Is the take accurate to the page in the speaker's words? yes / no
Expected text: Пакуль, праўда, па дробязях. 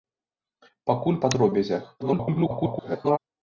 no